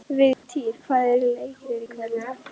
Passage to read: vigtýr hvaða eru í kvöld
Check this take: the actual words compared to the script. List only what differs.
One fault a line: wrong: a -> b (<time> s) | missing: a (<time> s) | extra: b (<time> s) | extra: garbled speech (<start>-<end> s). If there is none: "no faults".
extra: leikir (1.2 s)